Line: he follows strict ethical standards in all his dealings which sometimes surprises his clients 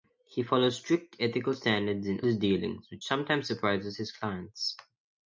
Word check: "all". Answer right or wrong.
wrong